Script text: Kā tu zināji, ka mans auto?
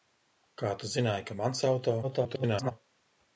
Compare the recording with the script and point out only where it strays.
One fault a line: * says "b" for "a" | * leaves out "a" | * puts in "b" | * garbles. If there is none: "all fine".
* garbles